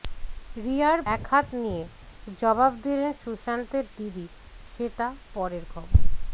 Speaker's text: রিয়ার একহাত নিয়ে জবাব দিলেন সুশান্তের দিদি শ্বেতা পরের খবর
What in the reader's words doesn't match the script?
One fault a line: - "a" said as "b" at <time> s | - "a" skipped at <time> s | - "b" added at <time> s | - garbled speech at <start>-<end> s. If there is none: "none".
none